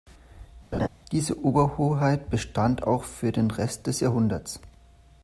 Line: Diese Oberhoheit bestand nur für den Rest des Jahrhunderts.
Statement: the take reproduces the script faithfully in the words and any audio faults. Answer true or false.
false